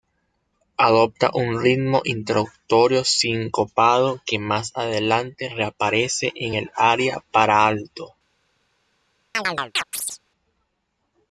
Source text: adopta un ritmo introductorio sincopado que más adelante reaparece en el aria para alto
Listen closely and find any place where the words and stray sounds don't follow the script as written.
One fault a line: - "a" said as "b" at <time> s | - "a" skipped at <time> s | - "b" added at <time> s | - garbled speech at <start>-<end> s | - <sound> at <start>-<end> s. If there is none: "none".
- chirp at 9.3-10.2 s